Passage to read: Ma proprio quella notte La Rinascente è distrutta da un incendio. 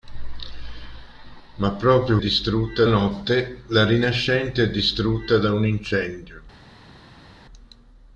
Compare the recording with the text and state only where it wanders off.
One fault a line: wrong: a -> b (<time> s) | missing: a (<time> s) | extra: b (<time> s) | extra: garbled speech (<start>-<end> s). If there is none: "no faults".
wrong: quella -> distrutta (2.2 s)